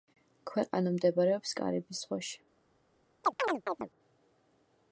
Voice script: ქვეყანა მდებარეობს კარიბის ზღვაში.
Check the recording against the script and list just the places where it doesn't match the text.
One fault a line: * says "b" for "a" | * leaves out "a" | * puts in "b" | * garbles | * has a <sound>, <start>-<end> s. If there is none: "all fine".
* has a chirp, 3.2-3.9 s